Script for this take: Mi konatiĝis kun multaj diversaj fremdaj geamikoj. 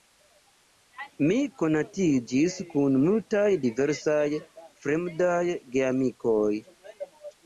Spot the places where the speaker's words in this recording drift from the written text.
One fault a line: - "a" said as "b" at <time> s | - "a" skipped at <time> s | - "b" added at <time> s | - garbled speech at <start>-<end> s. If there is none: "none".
none